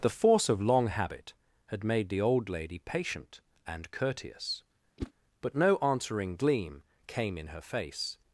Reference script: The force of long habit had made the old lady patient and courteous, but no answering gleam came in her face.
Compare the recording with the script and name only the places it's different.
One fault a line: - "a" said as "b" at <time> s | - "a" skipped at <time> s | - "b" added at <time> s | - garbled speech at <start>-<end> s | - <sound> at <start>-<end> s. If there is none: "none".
- whoosh at 5.0-5.1 s